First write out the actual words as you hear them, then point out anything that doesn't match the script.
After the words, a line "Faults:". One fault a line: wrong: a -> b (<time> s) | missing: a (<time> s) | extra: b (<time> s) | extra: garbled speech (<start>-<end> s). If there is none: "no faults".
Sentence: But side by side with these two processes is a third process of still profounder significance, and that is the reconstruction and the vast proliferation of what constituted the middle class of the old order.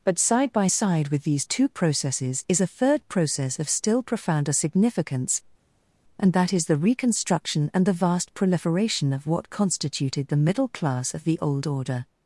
But side by side with these two processes is a third process of still profounder significance, and that is the reconstruction and the vast proliferation of what constituted the middle class of the old order.
Faults:
no faults